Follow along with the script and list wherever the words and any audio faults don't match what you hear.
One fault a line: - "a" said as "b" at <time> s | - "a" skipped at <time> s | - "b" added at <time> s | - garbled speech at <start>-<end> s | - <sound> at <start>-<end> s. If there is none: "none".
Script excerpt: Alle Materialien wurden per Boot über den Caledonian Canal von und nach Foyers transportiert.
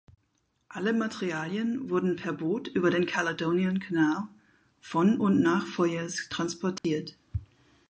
- dropout at 6.8-6.8 s